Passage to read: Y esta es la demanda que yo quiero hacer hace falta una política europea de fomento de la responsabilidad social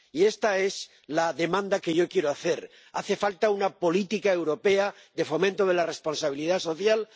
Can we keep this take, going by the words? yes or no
yes